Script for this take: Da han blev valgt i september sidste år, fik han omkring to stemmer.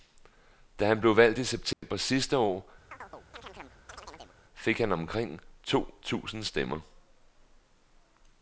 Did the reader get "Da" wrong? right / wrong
right